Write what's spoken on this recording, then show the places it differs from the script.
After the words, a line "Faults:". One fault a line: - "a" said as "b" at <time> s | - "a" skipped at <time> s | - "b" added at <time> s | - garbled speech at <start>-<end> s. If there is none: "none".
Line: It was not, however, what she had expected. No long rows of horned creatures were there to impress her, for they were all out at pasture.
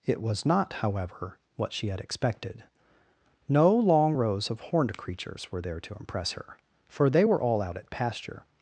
It was not, however, what she had expected. No long rows of horned creatures were there to impress her, for they were all out at pasture.
Faults:
none